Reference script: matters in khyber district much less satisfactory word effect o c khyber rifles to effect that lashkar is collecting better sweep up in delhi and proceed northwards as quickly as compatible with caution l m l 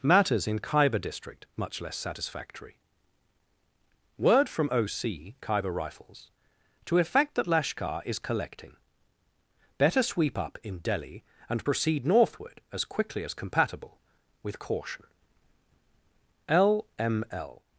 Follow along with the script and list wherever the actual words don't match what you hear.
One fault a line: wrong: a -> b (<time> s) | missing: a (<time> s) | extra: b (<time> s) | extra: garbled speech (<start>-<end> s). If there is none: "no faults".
wrong: effect -> from (4.5 s)
wrong: northwards -> northward (12.1 s)